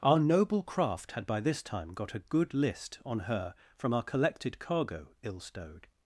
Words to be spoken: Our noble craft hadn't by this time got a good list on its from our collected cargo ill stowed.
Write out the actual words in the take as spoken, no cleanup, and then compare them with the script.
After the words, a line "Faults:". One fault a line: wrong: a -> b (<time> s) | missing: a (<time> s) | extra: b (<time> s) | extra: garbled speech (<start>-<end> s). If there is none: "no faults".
Our noble craft had by this time got a good list on her from our collected cargo ill stowed.
Faults:
wrong: hadn't -> had (1.1 s)
wrong: its -> her (3.2 s)